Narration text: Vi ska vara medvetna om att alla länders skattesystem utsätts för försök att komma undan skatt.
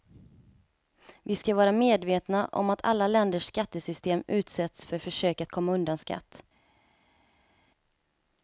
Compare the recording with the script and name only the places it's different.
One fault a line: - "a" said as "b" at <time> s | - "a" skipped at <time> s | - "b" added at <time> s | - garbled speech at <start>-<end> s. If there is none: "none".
none